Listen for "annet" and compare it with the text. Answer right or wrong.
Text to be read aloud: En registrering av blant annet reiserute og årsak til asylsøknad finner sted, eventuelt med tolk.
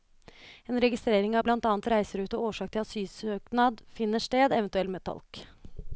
right